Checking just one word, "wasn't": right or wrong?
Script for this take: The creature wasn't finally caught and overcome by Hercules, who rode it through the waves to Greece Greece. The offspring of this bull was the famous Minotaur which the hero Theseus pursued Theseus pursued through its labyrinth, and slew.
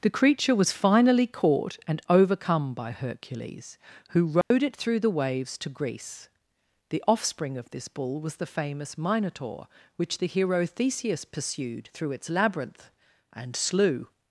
wrong